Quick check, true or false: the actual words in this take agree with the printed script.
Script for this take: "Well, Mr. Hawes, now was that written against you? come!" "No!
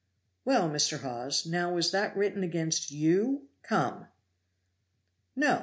true